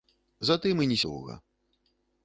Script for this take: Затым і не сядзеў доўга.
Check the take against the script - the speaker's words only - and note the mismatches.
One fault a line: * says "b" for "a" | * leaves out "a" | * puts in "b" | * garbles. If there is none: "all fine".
* leaves out "сядзеў"